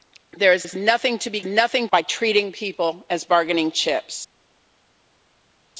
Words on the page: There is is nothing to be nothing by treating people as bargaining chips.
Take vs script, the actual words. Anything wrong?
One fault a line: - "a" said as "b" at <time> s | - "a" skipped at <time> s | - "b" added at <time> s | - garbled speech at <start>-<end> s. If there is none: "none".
none